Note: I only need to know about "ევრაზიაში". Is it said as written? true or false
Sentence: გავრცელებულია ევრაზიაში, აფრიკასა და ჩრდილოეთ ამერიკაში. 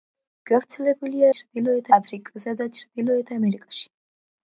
false